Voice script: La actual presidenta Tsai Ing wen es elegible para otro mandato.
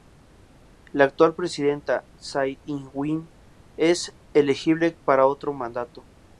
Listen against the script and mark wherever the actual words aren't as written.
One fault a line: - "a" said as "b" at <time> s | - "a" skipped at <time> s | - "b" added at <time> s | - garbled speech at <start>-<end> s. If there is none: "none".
none